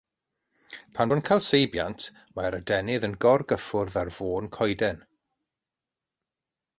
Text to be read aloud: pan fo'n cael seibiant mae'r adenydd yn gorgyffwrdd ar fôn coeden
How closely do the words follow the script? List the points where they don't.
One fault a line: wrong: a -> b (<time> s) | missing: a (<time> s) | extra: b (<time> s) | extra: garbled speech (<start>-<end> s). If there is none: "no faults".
no faults